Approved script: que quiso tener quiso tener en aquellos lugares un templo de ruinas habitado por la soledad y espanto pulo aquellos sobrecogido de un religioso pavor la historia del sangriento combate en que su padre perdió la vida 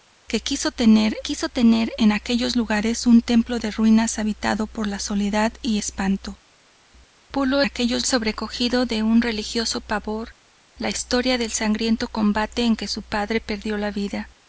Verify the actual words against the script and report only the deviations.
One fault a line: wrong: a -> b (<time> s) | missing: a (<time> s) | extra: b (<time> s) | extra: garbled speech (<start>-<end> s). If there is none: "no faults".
no faults